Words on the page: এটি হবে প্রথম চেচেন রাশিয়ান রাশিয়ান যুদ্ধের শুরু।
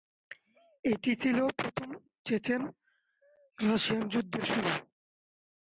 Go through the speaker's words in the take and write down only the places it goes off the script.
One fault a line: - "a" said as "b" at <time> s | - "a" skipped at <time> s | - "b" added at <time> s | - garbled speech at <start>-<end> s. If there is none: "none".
- "হবে" said as "ছিল" at 1.2 s
- "রাশিয়ান" skipped at 4.0 s